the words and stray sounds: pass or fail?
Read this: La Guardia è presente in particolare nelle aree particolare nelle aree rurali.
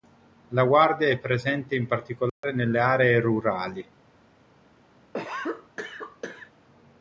fail